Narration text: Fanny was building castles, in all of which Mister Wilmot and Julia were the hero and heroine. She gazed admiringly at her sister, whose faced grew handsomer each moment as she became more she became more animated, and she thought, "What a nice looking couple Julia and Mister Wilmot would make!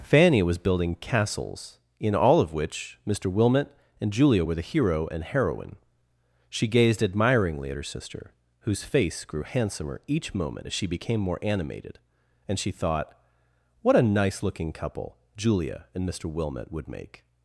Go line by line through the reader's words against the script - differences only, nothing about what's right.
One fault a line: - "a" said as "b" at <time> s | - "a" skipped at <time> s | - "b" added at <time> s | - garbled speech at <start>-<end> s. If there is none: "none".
- "faced" said as "face" at 8.8 s
- "she became more" skipped at 11.4 s